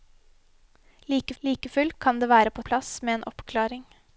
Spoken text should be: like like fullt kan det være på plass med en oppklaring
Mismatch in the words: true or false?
false